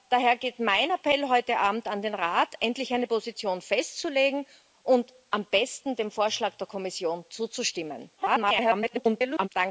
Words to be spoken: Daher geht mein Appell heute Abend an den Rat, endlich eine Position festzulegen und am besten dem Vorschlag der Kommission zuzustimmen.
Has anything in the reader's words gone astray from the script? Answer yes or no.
yes